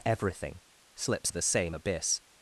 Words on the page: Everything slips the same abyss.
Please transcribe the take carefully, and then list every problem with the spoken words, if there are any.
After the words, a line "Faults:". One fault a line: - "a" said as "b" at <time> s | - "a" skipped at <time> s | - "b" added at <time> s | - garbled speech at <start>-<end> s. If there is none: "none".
Everything slips the same abyss.
Faults:
none